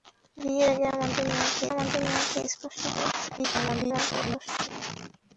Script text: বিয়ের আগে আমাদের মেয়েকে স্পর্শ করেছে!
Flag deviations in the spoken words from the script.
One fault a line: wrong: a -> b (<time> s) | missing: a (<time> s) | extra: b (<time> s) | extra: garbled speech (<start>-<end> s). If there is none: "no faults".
extra: আমাদের মেয়েকে (1.7 s)
extra: garbled speech (3.4-4.7 s)